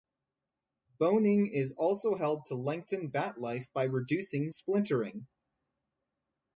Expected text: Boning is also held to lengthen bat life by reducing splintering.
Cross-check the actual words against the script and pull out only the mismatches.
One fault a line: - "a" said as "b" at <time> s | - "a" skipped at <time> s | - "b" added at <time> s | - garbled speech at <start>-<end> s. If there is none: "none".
none